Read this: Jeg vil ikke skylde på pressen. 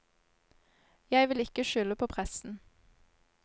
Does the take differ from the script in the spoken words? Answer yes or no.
no